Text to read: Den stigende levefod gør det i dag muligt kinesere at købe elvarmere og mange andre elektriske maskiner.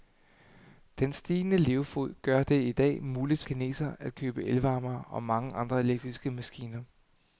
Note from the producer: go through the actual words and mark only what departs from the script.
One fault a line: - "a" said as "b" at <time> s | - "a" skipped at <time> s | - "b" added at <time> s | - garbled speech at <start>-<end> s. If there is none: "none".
none